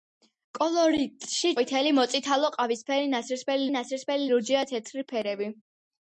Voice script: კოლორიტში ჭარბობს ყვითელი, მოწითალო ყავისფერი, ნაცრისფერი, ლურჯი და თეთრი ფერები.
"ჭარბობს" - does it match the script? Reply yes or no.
no